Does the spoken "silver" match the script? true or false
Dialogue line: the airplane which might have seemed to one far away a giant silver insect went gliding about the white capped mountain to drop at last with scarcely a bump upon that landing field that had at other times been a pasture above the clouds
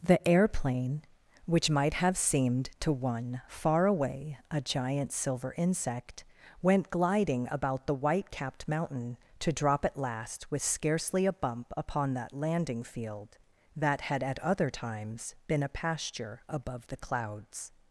true